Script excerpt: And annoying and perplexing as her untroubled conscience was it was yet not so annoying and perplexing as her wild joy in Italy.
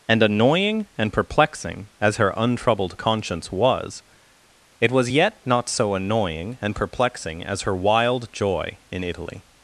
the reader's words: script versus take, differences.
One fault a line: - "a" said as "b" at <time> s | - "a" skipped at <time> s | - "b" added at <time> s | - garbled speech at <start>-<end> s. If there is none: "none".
none